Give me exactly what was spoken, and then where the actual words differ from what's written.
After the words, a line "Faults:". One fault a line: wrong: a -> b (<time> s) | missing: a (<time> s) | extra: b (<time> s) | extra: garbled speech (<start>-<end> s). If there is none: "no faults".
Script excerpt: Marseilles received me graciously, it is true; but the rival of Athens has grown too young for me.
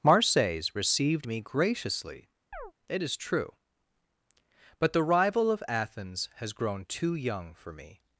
Marseilles received me graciously, it is true; but the rival of Athens has grown too young for me.
Faults:
no faults